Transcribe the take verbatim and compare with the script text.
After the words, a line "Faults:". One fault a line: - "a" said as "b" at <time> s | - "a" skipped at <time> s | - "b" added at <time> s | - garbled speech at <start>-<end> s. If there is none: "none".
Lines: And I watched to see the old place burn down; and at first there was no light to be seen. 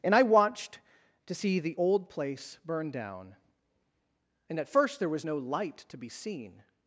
And I watched to see the old place burn down; and at first there was no light to be seen.
Faults:
none